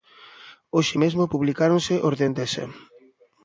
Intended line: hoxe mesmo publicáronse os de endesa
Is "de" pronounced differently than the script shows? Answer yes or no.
no